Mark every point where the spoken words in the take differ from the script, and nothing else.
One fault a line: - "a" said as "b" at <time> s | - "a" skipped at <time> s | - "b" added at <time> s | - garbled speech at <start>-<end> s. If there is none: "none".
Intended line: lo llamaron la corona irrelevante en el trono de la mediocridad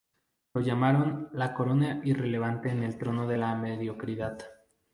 none